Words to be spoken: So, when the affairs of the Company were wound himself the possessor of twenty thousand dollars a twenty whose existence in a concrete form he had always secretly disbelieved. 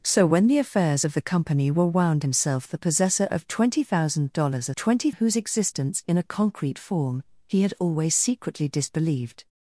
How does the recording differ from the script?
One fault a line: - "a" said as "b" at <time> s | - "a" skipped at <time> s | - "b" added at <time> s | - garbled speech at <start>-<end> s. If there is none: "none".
none